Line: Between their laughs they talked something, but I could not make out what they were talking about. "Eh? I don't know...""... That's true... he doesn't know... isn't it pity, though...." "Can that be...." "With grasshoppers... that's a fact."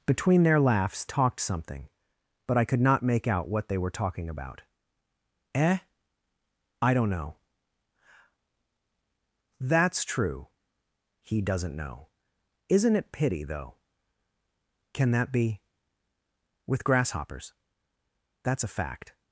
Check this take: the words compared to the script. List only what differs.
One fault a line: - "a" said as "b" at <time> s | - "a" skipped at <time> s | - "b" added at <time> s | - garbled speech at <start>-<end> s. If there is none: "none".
- "they" skipped at 1.1 s